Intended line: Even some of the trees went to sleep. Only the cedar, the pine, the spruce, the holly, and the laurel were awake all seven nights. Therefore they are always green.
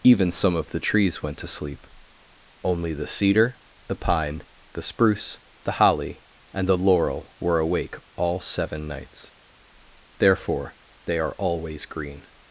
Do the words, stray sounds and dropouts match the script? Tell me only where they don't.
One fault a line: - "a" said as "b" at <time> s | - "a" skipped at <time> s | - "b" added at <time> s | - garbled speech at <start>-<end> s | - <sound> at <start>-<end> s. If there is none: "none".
none